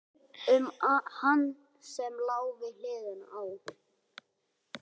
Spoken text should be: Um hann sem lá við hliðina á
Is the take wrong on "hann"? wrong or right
right